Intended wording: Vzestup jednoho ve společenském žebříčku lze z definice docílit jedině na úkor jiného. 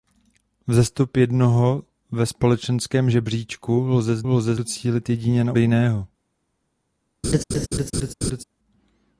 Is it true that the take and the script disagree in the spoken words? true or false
true